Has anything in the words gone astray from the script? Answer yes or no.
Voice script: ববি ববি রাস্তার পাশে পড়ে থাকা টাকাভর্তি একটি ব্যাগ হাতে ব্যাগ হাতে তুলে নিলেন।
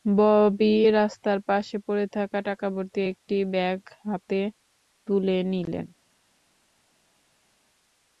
yes